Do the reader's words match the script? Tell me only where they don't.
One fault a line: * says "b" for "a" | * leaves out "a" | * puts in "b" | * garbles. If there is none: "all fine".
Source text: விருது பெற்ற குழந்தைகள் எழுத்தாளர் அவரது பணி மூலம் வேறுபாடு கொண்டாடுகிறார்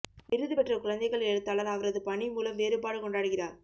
all fine